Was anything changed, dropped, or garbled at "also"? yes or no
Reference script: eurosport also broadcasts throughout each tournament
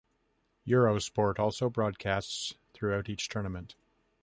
no